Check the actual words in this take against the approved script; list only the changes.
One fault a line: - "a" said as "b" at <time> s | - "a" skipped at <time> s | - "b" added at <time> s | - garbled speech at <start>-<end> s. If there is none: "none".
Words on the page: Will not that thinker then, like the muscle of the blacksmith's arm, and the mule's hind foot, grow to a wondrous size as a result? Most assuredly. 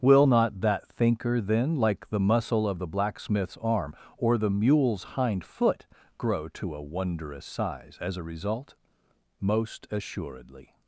- "and" said as "or" at 4.2 s